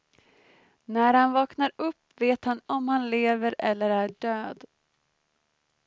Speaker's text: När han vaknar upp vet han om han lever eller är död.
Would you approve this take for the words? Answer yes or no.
yes